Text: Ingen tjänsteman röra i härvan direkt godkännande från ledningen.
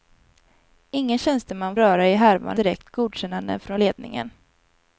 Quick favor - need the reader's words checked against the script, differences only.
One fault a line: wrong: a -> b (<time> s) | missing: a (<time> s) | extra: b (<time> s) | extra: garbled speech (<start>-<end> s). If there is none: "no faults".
no faults